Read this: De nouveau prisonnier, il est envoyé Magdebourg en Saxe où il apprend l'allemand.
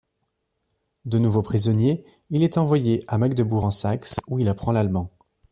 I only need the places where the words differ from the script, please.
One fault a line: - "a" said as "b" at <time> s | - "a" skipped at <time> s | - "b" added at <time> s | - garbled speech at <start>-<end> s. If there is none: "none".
- "à" added at 3.1 s